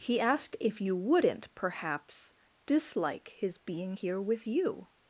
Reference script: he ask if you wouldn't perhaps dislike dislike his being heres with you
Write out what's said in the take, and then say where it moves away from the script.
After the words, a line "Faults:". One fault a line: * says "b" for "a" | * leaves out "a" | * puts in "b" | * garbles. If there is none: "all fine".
he asked if you wouldn't perhaps dislike his being here with you
Faults:
* says "asked" for "ask"
* leaves out "dislike"
* says "here" for "heres"